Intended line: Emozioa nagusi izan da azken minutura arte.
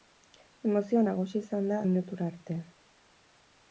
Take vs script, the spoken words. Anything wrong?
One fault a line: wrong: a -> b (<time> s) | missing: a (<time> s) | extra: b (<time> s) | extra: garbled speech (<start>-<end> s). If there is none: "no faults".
missing: azken (1.8 s)